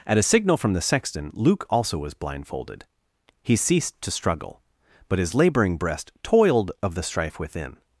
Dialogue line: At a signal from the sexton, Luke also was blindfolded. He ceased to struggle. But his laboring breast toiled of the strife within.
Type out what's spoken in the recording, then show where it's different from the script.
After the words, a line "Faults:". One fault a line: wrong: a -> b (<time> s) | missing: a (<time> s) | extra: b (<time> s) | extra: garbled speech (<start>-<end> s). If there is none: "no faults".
At a signal from the sexton, Luke also was blindfolded. He ceased to struggle. But his laboring breast toiled of the strife within.
Faults:
no faults